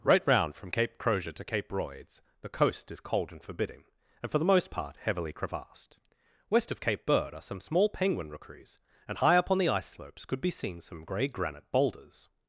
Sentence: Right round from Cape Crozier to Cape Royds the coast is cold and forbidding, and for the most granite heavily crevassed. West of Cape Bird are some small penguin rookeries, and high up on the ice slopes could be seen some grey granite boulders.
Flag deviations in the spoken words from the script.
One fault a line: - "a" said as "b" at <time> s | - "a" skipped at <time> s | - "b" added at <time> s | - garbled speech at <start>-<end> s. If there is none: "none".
- "granite" said as "part" at 4.7 s